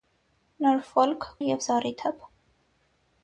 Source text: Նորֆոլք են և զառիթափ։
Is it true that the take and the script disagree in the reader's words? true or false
false